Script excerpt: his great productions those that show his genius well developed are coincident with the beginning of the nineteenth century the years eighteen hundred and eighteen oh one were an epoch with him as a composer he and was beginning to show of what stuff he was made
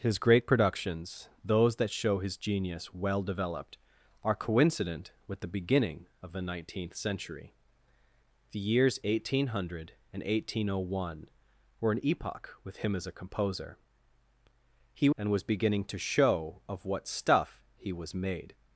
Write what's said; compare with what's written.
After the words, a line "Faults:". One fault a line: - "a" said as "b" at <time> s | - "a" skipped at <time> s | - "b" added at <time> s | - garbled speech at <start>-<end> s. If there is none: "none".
his great productions those that show his genius well developed are coincident with the beginning of the nineteenth century the years eighteen hundred and eighteen oh one were an epoch with him as a composer he and was beginning to show of what stuff he was made
Faults:
none